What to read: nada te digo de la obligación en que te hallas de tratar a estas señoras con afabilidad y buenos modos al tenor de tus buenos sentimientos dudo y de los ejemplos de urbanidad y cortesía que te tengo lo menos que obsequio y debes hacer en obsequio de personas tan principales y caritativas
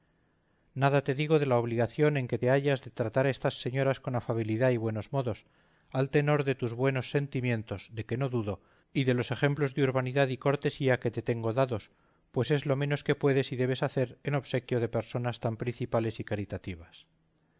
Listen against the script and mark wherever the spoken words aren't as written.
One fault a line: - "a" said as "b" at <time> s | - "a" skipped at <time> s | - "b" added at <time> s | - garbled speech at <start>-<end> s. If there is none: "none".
- "de que no" added at 7.9 s
- "dados pues es" added at 11.5 s
- "obsequio" said as "puedes" at 13.2 s